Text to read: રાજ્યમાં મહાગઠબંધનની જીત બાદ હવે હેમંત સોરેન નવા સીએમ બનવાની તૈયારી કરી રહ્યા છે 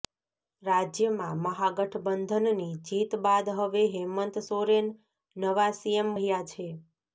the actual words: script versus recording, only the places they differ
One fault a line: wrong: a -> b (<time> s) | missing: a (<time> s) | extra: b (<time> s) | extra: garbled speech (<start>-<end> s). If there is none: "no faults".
missing: બનવાની તૈયારી કરી (6.2 s)